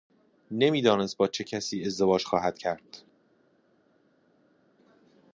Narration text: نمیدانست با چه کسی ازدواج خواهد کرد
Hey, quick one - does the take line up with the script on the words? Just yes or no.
yes